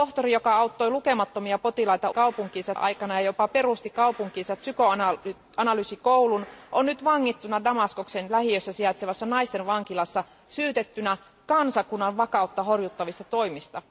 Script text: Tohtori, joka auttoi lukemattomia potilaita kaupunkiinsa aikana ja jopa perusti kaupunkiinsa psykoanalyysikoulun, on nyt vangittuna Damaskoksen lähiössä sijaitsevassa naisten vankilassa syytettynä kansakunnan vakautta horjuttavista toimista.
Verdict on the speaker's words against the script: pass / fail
pass